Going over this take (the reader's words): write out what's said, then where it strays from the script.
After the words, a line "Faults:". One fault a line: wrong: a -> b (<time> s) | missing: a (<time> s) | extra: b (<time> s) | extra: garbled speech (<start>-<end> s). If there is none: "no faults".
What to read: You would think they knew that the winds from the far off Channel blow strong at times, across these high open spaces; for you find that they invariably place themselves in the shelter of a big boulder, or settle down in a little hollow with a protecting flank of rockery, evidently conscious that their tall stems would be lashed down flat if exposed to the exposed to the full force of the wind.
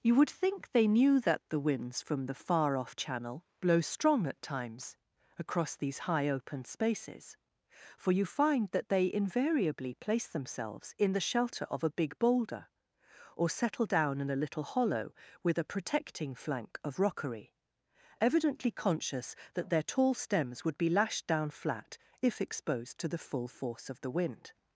You would think they knew that the winds from the far off Channel blow strong at times, across these high open spaces; for you find that they invariably place themselves in the shelter of a big boulder, or settle down in a little hollow with a protecting flank of rockery, evidently conscious that their tall stems would be lashed down flat if exposed to the full force of the wind.
Faults:
missing: exposed to the (23.2 s)